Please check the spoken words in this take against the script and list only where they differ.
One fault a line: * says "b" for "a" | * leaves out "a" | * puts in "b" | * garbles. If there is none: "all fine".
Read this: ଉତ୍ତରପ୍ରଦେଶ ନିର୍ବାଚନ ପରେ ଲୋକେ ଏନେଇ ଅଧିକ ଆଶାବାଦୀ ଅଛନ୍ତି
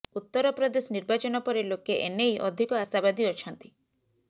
all fine